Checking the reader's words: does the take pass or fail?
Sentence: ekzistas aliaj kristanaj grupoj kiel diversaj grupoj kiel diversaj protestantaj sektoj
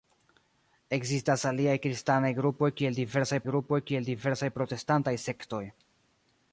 pass